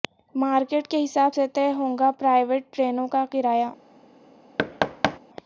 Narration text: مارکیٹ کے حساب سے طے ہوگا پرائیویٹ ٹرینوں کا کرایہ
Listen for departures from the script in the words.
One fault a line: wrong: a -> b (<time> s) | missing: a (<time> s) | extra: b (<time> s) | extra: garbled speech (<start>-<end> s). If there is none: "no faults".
no faults